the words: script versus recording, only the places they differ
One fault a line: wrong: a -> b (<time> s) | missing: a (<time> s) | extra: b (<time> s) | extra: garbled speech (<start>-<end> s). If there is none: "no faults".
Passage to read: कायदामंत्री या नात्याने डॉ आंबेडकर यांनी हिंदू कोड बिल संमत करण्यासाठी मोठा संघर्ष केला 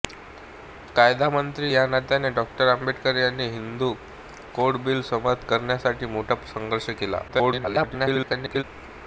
extra: garbled speech (7.3-8.6 s)